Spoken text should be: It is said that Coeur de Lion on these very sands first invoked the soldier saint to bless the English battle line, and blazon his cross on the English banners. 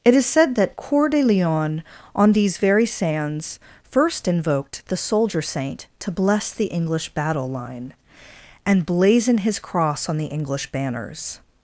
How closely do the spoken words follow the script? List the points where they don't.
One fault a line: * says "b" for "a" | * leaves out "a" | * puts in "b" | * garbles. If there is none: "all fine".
all fine